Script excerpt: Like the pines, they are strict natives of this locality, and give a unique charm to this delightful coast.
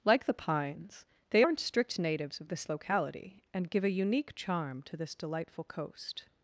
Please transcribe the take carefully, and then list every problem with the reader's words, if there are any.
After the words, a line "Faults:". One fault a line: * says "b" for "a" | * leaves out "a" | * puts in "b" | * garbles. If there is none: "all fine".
Like the pines, they aren't strict natives of this locality, and give a unique charm to this delightful coast.
Faults:
* says "aren't" for "are"